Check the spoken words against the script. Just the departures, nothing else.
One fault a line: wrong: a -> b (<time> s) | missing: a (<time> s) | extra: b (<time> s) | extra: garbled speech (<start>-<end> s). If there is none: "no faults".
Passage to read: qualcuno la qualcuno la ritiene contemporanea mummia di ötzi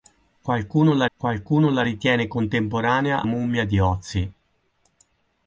no faults